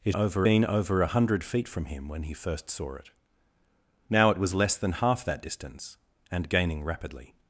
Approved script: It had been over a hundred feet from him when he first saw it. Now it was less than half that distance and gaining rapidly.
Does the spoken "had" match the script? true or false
false